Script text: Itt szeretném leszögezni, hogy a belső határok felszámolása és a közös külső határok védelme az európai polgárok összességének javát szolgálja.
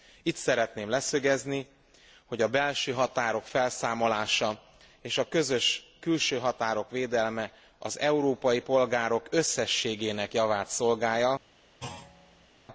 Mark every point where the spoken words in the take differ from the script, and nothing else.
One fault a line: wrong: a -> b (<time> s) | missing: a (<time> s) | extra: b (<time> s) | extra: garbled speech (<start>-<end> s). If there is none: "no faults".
no faults